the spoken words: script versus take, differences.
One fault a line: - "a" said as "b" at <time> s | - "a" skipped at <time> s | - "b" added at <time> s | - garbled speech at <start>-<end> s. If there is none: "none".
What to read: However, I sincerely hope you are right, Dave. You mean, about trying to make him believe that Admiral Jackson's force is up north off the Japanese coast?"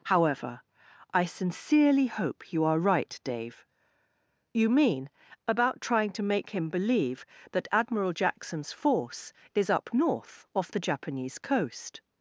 none